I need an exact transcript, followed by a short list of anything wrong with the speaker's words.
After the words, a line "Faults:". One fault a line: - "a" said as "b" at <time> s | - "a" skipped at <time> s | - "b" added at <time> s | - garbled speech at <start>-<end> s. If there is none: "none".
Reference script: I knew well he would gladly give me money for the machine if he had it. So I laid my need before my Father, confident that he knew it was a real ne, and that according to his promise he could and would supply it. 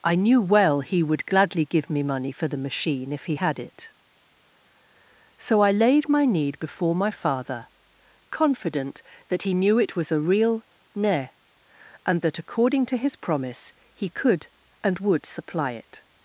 I knew well he would gladly give me money for the machine if he had it. So I laid my need before my Father, confident that he knew it was a real ne, and that according to his promise he could and would supply it.
Faults:
none